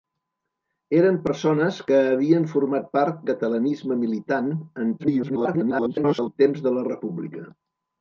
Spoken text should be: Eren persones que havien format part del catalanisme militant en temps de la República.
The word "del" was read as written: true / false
false